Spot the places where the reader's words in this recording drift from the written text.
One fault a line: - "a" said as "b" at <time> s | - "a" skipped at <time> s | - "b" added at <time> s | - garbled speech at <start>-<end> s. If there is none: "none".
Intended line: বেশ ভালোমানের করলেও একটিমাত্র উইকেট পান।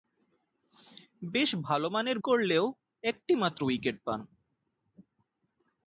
none